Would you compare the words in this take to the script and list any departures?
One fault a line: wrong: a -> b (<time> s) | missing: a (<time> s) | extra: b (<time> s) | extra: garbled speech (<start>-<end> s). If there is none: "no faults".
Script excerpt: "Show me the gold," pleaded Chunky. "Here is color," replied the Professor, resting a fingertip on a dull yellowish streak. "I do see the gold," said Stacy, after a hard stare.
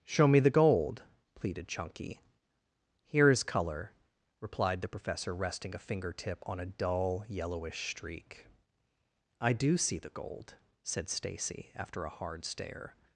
no faults